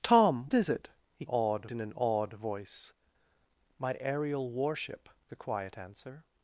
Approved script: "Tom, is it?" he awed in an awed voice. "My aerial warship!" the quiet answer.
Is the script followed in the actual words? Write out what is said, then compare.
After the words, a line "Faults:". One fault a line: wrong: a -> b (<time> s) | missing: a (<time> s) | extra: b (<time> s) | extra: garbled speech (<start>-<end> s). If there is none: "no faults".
"Tom, is it?" he awed in an awed voice. "My aerial warship!" the quiet answer.
Faults:
no faults